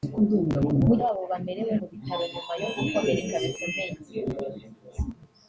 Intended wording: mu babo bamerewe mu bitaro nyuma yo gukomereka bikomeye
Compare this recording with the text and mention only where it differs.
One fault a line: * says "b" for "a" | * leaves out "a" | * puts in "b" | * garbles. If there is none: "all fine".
all fine